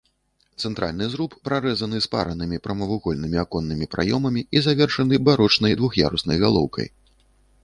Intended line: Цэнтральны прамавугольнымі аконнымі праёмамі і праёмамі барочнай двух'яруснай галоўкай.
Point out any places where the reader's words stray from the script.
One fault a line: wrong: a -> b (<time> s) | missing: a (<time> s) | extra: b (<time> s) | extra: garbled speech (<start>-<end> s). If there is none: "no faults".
extra: зруб прарэзаны спаранымі (1.1 s)
wrong: праёмамі -> завершаны (4.7 s)